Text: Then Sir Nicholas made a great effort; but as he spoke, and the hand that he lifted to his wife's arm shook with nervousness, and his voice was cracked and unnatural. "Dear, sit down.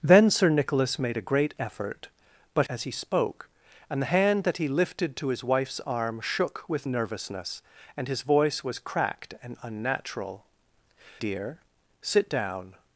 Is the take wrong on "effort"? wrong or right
right